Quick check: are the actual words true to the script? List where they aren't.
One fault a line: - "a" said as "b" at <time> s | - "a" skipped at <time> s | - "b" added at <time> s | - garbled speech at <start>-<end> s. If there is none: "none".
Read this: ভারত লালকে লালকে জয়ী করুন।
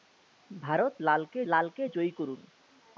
none